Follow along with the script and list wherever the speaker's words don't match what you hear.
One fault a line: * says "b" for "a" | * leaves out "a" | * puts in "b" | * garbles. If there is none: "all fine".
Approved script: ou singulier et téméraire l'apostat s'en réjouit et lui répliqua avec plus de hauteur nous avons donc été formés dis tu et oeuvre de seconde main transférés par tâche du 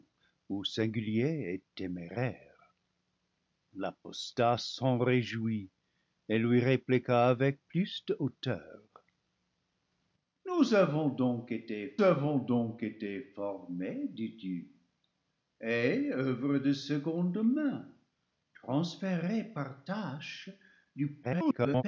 * puts in "avons donc été"
* garbles